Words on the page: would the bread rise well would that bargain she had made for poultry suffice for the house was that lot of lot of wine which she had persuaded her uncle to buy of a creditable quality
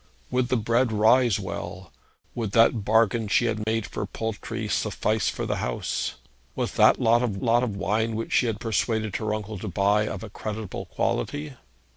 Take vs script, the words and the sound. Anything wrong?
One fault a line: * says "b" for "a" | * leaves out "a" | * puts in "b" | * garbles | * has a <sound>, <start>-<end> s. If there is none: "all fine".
* has a dropout, 3.6-3.7 s